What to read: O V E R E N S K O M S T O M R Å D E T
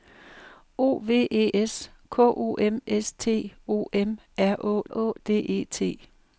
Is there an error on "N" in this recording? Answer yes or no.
yes